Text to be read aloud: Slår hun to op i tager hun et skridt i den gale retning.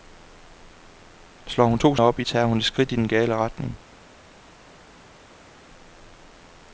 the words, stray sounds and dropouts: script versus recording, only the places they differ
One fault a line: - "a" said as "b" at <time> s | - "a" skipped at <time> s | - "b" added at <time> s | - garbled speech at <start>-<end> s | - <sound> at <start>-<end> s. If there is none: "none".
none